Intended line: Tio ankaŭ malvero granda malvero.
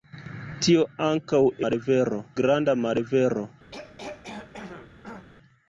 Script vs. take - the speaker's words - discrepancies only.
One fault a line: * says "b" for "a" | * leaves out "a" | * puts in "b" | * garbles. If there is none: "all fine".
all fine